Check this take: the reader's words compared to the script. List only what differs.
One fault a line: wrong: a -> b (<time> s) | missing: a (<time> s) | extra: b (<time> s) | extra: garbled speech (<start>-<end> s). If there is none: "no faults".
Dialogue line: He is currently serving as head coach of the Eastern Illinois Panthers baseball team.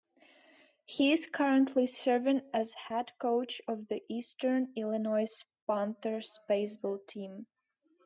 no faults